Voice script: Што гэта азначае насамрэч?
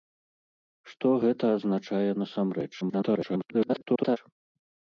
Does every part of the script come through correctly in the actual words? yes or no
no